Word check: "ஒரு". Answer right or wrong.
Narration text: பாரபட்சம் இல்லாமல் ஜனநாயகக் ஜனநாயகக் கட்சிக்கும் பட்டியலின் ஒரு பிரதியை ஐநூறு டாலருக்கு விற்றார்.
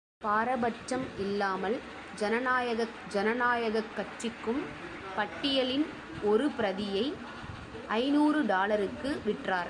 right